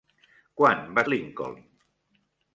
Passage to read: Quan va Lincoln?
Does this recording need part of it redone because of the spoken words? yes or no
no